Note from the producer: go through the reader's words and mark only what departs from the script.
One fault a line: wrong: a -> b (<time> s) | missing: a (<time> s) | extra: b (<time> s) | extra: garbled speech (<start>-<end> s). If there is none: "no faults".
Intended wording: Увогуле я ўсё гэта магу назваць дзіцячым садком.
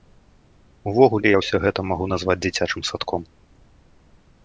no faults